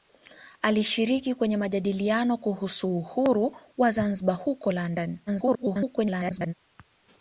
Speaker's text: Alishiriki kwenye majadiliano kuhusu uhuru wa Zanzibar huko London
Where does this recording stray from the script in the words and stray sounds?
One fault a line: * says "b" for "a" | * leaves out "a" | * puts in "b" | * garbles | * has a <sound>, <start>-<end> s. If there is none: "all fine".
* garbles